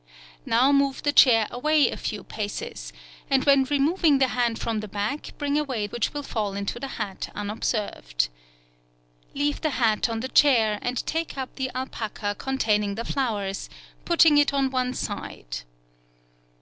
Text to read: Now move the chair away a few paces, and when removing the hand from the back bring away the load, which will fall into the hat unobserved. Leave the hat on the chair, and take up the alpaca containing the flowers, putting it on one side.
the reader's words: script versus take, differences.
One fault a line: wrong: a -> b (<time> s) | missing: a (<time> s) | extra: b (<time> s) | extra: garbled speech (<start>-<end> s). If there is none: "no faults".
missing: the load (5.8 s)